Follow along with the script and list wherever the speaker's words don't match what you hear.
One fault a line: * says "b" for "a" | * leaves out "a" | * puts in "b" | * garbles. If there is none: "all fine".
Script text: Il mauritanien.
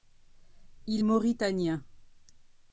all fine